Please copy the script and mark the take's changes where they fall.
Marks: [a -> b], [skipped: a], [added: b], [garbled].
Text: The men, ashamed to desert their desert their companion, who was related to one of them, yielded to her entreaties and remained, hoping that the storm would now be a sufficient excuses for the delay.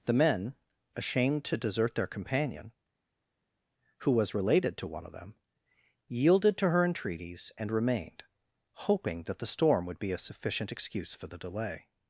The men, ashamed to desert their [skipped: desert their] companion, who was related to one of them, yielded to her entreaties and remained, hoping that the storm would [skipped: now] be a sufficient [excuses -> excuse] for the delay.